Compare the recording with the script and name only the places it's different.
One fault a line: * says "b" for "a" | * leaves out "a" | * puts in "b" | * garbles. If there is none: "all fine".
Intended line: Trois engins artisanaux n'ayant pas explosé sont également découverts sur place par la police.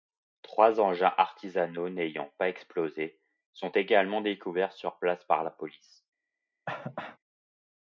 all fine